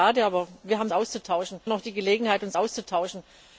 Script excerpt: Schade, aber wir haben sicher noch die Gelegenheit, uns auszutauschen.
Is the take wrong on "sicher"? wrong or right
wrong